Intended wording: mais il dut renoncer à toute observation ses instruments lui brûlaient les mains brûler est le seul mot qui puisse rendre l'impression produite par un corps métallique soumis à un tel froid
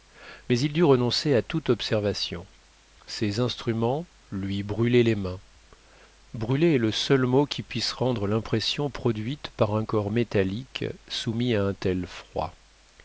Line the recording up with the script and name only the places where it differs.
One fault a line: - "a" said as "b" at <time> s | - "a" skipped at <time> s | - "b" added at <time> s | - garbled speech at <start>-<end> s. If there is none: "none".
none